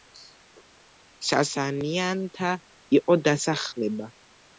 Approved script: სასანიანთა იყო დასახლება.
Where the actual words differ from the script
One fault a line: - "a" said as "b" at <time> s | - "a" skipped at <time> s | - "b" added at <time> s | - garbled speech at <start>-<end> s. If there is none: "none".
none